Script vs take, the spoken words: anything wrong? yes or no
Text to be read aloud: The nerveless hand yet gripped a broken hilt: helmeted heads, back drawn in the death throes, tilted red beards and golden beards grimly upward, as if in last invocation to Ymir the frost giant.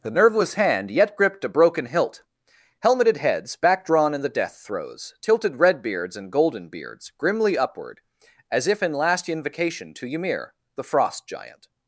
no